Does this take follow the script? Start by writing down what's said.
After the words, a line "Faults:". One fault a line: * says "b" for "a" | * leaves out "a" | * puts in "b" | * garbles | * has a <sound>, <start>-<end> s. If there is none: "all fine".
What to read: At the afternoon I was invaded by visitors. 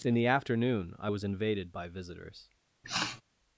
In the afternoon I was invaded by visitors.
Faults:
* says "In" for "At"
* has a sniff, 2.8-3.2 s